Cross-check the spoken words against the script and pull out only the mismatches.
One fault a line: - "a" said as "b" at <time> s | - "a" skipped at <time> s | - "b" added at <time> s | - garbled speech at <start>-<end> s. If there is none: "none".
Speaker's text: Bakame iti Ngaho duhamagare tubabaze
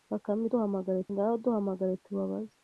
- "iti" said as "duhamagare" at 0.5 s